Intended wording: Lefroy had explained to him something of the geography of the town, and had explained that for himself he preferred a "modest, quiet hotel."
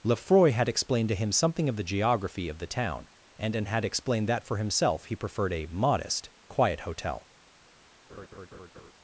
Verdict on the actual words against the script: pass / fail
fail